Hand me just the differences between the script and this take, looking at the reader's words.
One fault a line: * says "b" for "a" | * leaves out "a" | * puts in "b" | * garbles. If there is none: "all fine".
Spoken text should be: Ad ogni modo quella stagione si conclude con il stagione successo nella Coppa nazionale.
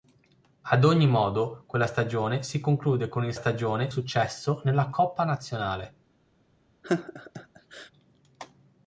all fine